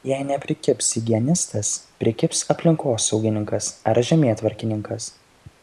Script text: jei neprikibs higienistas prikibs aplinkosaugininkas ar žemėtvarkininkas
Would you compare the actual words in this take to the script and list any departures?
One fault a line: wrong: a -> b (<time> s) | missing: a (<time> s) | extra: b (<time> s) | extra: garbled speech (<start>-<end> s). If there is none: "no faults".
no faults